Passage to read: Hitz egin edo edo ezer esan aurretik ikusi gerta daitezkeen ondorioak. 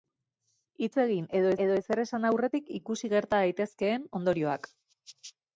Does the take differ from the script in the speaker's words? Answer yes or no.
no